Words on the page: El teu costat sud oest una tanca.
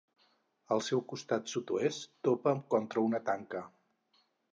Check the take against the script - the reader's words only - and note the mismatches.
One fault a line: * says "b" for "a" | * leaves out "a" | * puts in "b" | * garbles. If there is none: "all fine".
* says "seu" for "teu"
* puts in "topa contra"